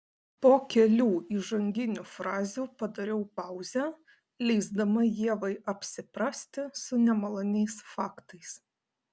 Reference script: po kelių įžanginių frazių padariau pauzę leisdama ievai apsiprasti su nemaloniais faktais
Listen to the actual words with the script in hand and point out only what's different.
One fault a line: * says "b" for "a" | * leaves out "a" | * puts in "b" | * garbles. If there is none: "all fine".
all fine